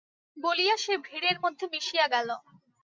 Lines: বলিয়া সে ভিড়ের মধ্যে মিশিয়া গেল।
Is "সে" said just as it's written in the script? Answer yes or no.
yes